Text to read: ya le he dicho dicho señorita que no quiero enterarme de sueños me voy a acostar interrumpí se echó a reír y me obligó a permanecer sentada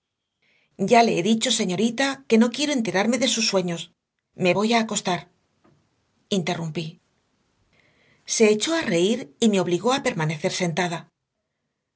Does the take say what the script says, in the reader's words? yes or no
no